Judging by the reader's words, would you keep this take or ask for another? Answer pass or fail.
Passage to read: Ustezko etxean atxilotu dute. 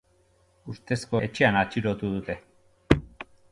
pass